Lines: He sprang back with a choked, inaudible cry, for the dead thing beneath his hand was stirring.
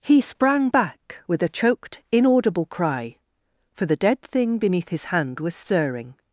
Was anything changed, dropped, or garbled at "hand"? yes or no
no